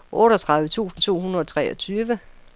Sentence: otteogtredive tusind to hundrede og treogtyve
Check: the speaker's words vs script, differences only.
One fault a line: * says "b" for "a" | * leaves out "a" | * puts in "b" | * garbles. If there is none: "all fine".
all fine